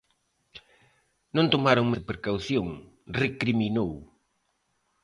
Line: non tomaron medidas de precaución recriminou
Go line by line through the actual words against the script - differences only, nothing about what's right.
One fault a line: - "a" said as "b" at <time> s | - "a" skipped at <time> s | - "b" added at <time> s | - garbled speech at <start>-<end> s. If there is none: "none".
- "medidas" skipped at 1.9 s